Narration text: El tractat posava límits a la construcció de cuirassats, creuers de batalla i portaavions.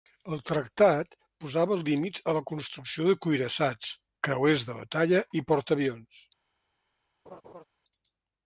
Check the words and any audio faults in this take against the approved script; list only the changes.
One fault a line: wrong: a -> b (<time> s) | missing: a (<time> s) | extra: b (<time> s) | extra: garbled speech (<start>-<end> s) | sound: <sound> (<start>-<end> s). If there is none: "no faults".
sound: laugh (7.3-7.7 s)